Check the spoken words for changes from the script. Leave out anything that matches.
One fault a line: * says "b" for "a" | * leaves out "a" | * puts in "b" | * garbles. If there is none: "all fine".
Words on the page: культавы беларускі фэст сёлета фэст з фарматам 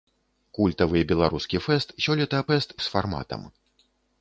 all fine